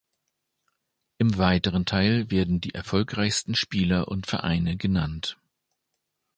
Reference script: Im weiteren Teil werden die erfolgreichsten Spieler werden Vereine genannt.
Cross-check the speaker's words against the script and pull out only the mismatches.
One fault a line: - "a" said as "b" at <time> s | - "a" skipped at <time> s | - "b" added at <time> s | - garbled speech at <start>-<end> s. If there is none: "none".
- "werden" said as "und" at 4.1 s